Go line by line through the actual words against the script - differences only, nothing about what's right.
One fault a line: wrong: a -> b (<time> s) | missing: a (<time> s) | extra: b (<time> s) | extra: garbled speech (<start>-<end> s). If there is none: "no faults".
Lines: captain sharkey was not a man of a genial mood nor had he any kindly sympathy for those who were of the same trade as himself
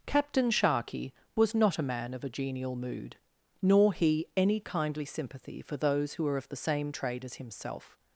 missing: had (3.9 s)